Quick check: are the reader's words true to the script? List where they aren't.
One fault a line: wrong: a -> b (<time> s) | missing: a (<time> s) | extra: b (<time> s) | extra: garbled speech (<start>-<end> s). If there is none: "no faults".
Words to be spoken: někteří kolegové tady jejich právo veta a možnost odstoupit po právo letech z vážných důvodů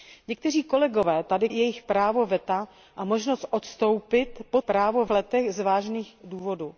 no faults